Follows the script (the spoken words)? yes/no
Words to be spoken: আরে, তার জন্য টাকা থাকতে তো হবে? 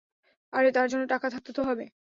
yes